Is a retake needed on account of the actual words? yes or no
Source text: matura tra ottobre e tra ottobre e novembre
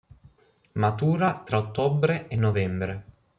yes